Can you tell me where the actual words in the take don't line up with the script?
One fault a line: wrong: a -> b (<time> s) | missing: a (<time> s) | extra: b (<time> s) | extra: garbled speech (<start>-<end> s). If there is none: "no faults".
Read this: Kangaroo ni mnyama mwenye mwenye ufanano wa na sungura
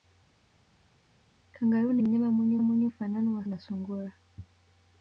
no faults